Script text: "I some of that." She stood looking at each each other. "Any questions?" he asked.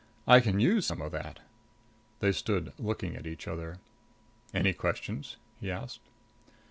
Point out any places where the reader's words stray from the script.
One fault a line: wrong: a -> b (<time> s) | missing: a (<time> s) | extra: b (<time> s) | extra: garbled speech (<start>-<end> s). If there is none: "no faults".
extra: can use (0.4 s)
wrong: She -> They (2.2 s)
missing: each (3.5 s)